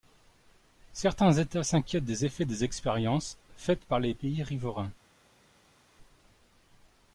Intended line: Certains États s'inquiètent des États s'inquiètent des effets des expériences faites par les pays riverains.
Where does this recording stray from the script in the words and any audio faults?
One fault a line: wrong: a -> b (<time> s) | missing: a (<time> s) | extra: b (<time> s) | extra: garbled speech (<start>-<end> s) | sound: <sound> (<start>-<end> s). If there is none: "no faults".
missing: États s'inquiètent des (2.2 s)